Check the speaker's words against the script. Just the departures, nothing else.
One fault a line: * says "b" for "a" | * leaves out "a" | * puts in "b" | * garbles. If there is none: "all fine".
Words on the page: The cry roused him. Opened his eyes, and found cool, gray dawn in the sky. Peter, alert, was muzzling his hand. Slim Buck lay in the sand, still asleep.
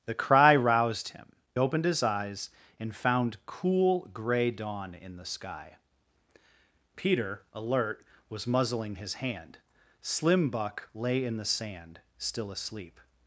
all fine